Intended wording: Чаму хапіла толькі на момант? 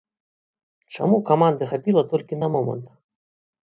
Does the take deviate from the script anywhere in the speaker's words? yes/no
yes